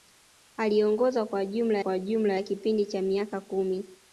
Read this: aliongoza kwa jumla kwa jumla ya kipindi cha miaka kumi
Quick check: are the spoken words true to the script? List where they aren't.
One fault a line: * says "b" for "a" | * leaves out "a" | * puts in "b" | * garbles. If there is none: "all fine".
all fine